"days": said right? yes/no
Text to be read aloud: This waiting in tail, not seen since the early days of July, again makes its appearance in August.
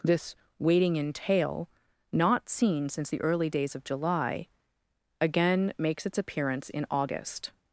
yes